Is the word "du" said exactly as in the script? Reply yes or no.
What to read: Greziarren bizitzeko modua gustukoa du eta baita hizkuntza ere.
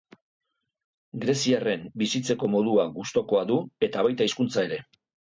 yes